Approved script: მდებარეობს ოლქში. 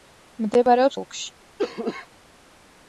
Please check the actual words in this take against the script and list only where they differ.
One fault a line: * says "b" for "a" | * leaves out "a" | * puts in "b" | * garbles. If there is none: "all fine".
all fine